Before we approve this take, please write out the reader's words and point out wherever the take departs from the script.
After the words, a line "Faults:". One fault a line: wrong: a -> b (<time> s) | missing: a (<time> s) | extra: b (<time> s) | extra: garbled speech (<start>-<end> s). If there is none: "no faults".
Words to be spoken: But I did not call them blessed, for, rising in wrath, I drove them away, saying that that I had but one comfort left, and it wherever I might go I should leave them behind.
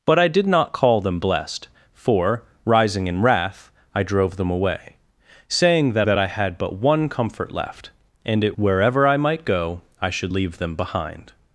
But I did not call them blessed, for, rising in wrath, I drove them away, saying that that I had but one comfort left, and it wherever I might go I should leave them behind.
Faults:
no faults